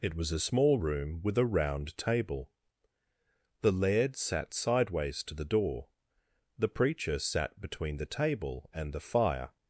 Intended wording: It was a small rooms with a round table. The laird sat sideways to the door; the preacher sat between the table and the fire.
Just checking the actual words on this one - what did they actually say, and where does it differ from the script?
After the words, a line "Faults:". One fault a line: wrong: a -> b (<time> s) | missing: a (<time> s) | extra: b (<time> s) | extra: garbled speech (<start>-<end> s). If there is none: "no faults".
It was a small room with a round table. The laird sat sideways to the door; the preacher sat between the table and the fire.
Faults:
wrong: rooms -> room (0.8 s)